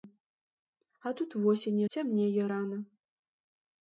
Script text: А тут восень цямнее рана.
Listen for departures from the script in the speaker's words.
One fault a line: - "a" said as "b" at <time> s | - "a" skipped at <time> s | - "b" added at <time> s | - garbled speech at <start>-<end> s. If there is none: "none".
none